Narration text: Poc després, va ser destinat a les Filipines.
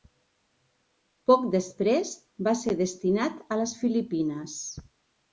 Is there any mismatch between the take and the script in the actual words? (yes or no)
no